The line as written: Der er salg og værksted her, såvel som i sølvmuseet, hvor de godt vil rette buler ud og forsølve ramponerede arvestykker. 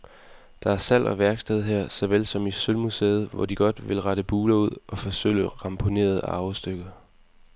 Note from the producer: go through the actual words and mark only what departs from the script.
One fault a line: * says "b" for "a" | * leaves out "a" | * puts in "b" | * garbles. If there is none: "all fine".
all fine